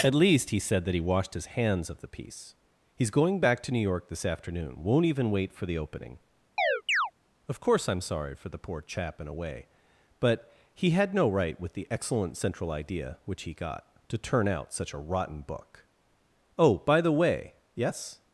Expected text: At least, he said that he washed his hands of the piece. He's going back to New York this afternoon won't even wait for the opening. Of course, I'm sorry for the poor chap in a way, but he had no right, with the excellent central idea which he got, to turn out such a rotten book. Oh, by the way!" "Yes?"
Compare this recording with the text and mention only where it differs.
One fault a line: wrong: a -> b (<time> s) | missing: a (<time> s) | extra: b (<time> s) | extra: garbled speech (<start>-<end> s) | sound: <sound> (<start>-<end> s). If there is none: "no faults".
sound: chirp (6.6-7.1 s)